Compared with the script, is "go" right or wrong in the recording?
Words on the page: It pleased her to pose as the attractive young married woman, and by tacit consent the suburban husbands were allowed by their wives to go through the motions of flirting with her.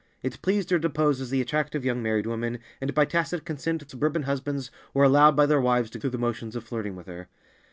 wrong